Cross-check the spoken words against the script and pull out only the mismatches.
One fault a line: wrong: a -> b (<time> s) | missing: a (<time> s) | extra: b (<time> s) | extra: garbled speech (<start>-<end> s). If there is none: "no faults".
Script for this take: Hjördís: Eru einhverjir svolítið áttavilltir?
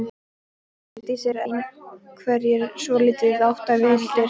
no faults